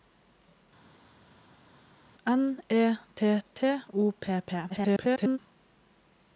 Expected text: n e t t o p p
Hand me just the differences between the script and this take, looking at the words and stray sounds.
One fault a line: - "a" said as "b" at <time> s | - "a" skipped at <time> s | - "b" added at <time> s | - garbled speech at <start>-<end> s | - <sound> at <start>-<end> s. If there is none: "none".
- garbled speech at 4.7-5.4 s